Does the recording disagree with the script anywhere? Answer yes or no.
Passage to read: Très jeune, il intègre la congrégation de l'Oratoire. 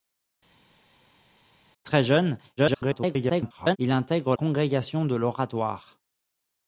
yes